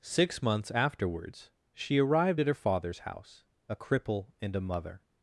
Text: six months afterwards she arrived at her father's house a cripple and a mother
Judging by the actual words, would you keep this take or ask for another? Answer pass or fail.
pass